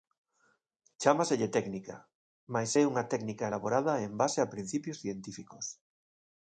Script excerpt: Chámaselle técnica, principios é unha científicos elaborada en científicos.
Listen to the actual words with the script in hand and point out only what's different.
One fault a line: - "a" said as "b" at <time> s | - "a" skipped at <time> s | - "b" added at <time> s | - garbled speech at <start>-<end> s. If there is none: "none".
- "principios" said as "mais" at 2.5 s
- "científicos" said as "técnica" at 3.1 s
- "base a principios" added at 4.2 s